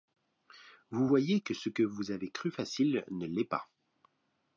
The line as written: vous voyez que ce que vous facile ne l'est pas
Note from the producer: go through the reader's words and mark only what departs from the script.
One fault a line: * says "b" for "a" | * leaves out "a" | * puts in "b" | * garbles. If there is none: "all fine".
* puts in "avez cru"